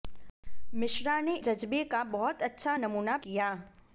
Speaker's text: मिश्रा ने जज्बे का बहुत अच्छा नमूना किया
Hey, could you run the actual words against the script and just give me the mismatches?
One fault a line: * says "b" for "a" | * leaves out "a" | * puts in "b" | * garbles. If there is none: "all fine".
all fine